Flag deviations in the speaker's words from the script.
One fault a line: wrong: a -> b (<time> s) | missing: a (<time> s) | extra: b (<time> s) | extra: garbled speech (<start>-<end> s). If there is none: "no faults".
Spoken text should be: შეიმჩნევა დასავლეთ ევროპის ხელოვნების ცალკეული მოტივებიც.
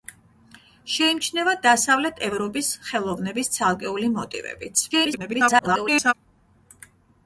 extra: garbled speech (4.9-6.1 s)